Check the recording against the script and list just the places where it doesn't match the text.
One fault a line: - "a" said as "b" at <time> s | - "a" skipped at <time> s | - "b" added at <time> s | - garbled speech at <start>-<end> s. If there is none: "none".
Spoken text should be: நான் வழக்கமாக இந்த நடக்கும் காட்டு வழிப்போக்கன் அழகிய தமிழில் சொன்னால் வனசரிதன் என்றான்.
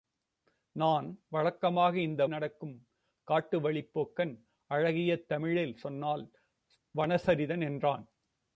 none